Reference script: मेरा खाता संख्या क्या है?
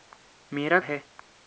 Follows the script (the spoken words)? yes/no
no